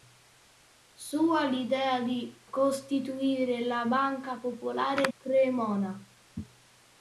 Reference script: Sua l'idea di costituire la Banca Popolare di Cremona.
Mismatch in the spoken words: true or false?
true